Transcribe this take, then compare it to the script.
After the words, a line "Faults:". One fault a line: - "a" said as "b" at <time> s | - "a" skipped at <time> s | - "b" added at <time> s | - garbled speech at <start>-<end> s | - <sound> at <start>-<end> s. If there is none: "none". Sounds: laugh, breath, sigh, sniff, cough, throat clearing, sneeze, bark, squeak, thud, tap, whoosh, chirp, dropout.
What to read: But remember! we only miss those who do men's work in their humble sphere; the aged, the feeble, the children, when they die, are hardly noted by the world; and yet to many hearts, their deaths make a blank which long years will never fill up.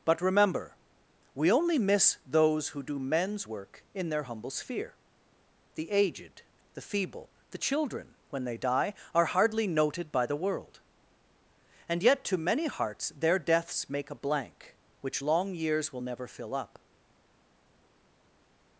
But remember! we only miss those who do men's work in their humble sphere; the aged, the feeble, the children, when they die, are hardly noted by the world; and yet to many hearts, their deaths make a blank which long years will never fill up.
Faults:
none